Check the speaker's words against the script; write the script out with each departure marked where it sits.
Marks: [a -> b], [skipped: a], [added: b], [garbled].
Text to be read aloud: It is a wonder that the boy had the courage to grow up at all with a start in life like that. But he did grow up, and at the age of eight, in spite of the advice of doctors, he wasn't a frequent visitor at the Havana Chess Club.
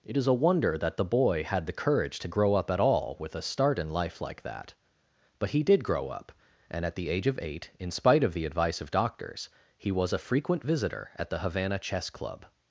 It is a wonder that the boy had the courage to grow up at all with a start in life like that. But he did grow up, and at the age of eight, in spite of the advice of doctors, he [wasn't -> was] a frequent visitor at the Havana Chess Club.